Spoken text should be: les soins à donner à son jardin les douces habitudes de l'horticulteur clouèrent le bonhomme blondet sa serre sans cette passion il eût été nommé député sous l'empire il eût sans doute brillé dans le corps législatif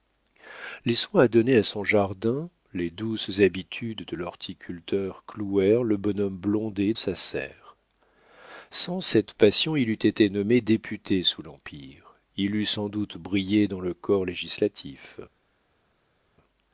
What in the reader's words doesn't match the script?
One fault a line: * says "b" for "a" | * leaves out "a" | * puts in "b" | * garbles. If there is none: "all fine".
all fine